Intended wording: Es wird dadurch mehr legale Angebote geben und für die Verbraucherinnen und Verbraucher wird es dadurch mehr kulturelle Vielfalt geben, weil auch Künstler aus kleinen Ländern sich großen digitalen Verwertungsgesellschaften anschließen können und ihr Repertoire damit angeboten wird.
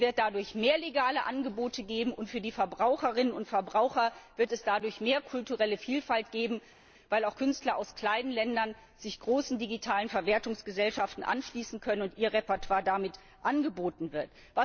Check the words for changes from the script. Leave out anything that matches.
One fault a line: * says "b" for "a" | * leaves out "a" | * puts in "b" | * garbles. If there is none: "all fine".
all fine